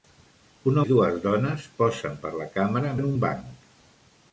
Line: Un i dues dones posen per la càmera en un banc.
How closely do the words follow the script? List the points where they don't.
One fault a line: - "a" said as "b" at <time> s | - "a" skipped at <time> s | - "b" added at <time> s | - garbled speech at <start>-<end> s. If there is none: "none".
none